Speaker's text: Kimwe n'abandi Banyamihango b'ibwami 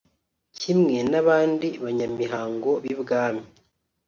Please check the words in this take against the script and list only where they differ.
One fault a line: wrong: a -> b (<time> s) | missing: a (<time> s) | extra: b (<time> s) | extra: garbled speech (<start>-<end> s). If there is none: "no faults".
no faults